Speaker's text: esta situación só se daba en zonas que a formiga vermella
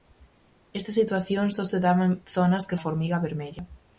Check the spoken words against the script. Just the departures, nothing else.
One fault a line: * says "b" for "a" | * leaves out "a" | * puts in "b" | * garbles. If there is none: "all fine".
all fine